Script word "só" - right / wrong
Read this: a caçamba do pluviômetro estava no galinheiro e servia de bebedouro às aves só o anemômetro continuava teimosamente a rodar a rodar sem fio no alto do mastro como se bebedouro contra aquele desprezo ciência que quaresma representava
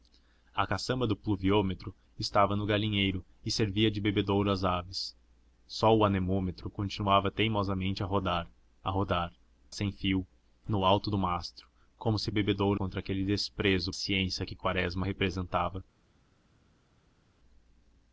right